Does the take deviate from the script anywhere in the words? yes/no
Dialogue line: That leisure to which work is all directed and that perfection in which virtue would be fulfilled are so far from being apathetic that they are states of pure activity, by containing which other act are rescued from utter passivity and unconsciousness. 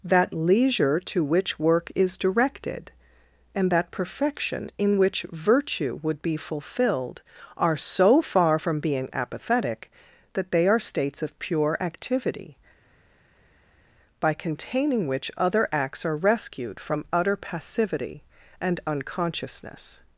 yes